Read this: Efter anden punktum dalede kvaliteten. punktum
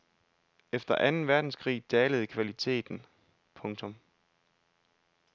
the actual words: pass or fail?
fail